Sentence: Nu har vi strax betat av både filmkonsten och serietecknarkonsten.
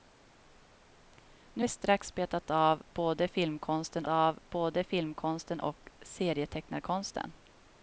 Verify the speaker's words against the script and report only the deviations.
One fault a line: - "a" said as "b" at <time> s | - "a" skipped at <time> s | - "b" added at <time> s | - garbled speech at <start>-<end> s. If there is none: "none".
- "har" skipped at 1.6 s
- "av både filmkonsten" added at 4.1 s